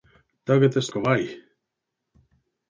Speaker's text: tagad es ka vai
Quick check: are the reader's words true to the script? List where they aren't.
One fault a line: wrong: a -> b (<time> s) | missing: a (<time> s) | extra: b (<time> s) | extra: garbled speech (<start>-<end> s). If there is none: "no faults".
no faults